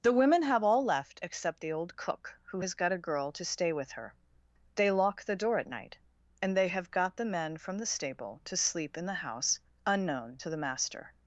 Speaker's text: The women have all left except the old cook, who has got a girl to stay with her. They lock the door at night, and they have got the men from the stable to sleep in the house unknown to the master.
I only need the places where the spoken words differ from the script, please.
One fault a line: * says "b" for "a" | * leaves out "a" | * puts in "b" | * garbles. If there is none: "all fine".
all fine